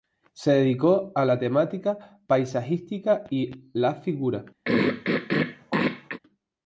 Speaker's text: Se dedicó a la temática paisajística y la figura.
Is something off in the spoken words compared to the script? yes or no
no